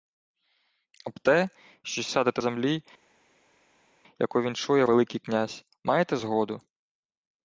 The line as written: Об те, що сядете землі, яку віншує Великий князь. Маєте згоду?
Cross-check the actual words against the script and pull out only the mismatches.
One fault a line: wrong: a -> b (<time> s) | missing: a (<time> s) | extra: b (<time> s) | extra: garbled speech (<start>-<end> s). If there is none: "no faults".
no faults